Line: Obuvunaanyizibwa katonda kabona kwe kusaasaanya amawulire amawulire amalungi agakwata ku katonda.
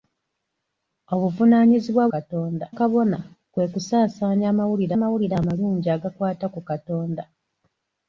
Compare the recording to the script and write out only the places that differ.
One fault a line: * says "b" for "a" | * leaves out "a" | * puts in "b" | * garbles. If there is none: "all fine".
all fine